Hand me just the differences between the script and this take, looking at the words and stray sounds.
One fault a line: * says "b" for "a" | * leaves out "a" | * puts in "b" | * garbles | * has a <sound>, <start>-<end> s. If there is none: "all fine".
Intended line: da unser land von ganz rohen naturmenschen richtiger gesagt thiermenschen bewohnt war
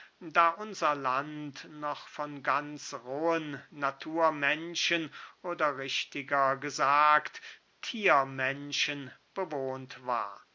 * puts in "noch"
* puts in "oder"